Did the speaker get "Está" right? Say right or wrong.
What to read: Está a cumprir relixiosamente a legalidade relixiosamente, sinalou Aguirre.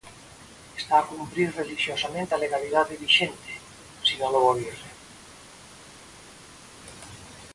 right